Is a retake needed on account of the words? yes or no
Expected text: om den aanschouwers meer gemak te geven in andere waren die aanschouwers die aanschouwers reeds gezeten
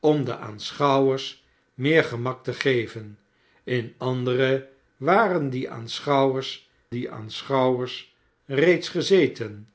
no